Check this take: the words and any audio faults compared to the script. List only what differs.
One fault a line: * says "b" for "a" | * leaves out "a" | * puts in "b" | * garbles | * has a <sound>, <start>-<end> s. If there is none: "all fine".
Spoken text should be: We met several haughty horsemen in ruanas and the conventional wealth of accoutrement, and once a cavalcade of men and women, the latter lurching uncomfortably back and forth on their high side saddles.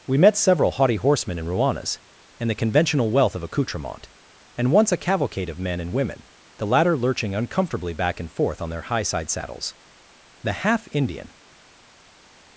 * puts in "The half Indian"